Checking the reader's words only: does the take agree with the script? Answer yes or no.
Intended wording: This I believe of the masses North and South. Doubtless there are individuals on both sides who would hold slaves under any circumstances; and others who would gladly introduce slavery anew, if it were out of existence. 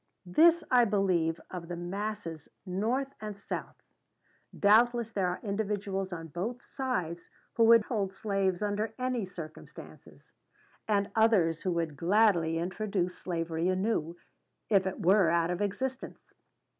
yes